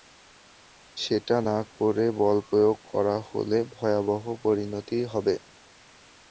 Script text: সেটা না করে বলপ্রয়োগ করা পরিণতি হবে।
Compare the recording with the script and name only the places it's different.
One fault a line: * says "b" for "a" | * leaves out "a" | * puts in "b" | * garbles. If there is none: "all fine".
* puts in "হলে ভয়াবহ"